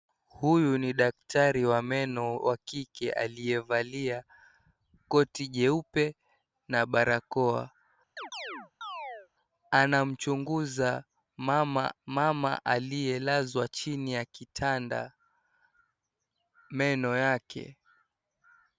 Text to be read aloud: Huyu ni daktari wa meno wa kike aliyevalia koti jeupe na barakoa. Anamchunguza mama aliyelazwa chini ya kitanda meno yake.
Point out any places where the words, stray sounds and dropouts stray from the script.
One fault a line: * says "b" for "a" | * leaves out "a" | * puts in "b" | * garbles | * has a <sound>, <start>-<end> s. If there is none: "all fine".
* has a chirp, 8.2-9.3 s
* puts in "mama"